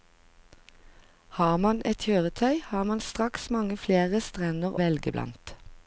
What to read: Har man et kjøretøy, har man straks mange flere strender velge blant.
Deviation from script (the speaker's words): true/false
false